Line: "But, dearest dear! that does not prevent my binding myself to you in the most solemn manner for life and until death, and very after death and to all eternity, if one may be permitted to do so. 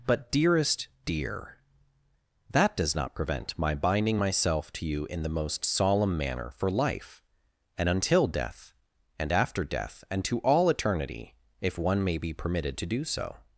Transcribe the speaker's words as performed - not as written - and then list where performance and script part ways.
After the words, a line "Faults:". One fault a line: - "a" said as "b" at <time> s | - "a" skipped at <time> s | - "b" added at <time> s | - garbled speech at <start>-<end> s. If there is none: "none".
"But, dearest dear! that does not prevent my binding myself to you in the most solemn manner for life and until death, and after death and to all eternity, if one may be permitted to do so.
Faults:
- "very" skipped at 9.3 s